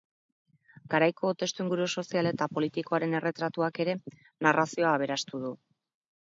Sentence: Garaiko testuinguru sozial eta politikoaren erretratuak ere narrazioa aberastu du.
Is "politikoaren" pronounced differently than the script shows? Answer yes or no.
no